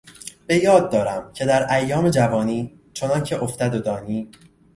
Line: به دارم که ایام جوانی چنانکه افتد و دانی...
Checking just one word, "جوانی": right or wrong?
right